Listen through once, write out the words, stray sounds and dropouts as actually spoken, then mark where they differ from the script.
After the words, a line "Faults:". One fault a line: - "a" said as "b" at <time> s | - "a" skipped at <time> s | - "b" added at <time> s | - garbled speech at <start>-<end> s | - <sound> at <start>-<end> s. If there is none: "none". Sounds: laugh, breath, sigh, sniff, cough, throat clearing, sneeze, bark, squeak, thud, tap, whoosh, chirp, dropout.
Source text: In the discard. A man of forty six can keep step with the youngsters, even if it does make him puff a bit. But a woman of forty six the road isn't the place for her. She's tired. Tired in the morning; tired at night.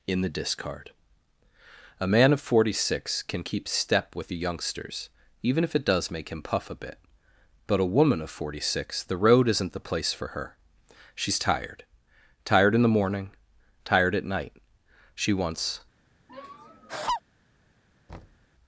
In the discard. A man of forty six can keep step with the youngsters, even if it does make him puff a bit. But a woman of forty six the road isn't the place for her. She's tired. Tired in the morning; tired at night. She wants
Faults:
- "She wants" added at 15.1 s
- laugh at 16.3-17.2 s
- thud at 18.1-18.5 s